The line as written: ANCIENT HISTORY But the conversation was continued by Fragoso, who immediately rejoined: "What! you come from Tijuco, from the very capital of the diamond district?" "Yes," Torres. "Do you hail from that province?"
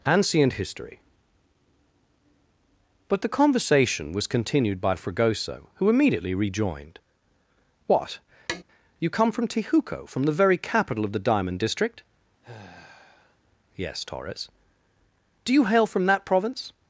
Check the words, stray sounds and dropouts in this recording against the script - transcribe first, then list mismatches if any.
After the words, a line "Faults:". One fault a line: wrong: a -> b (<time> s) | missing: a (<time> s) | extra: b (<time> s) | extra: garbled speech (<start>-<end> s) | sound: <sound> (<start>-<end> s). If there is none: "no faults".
ANCIENT HISTORY But the conversation was continued by Fragoso, who immediately rejoined: "What! you come from Tijuco, from the very capital of the diamond district?" "Yes," Torres. "Do you hail from that province?"
Faults:
sound: tap (8.5-8.6 s)
sound: sigh (12.4-13.4 s)